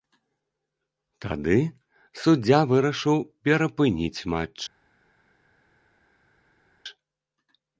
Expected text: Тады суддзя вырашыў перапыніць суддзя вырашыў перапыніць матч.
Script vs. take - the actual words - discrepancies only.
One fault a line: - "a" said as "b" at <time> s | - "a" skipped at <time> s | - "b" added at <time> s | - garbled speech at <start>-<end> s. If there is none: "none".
- "суддзя вырашыў перапыніць" skipped at 4.2 s